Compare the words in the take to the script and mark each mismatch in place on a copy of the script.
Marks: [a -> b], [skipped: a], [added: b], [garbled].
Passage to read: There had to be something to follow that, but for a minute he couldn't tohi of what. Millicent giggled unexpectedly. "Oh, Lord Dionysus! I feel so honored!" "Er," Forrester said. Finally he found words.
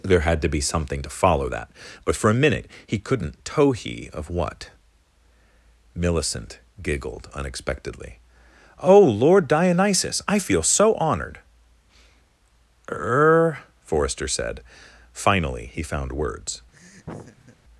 There had to be something to follow that, but for a minute he couldn't tohi of what. Millicent giggled unexpectedly. "Oh, Lord Dionysus! I feel so honored!" "Er," Forrester said. Finally he found words.